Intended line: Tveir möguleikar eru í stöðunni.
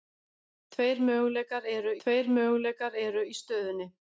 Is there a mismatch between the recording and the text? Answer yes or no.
yes